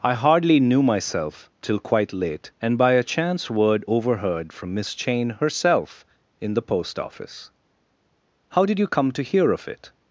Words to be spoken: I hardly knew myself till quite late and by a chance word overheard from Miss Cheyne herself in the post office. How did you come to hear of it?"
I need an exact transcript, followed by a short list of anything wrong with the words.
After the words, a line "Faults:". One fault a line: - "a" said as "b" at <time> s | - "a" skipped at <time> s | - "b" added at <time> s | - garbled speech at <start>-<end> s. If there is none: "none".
I hardly knew myself till quite late and by a chance word overheard from Miss Cheyne herself in the post office. How did you come to hear of it?"
Faults:
none